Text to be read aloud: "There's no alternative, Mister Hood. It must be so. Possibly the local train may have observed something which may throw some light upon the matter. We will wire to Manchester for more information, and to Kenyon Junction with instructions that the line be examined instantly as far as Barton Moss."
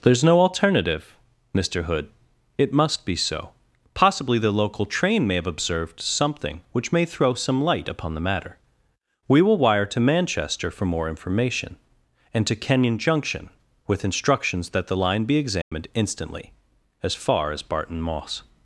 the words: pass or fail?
pass